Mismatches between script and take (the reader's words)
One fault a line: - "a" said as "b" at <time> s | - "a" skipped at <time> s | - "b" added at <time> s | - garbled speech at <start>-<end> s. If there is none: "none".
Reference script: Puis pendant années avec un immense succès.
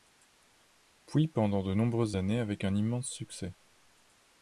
- "de nombreuses" added at 1.6 s